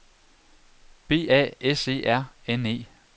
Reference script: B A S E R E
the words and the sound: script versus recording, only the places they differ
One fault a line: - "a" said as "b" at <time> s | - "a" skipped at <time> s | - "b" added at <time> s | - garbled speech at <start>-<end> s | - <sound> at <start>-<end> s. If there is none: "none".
- "N" added at 2.5 s